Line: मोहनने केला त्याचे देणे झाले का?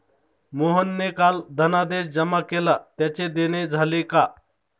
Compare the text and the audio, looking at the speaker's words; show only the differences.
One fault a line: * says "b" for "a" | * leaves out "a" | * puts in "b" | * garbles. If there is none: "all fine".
* puts in "काल धनादेश जमा"